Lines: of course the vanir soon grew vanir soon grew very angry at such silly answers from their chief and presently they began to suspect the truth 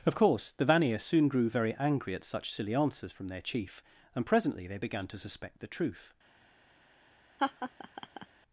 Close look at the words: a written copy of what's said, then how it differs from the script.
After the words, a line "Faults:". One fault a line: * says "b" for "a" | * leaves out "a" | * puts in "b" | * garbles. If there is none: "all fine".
of course the vanir soon grew very angry at such silly answers from their chief and presently they began to suspect the truth
Faults:
* leaves out "vanir soon grew"